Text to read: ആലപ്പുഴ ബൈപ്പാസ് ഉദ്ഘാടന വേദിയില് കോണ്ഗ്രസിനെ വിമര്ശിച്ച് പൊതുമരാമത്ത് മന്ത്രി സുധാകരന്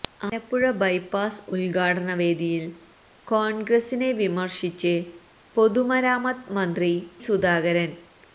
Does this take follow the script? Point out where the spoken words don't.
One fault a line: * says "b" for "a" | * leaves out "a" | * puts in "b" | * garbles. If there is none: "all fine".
all fine